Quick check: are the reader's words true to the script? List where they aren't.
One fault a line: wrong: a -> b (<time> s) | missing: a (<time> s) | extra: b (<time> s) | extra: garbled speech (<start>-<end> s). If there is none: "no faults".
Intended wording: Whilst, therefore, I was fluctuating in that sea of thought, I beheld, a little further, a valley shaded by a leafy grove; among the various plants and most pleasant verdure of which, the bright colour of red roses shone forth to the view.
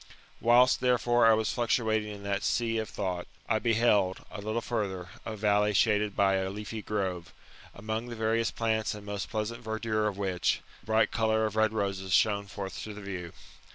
no faults